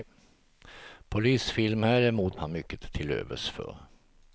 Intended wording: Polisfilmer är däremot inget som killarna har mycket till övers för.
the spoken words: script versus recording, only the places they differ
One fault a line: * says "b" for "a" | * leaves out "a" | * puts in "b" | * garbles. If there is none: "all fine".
* leaves out "inget som killarna"